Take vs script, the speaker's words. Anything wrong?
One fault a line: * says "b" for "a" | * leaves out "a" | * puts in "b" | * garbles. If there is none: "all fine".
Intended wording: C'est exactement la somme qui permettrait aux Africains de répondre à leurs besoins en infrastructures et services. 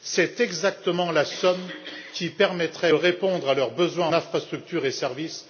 * leaves out "aux Africains de"
* leaves out "en"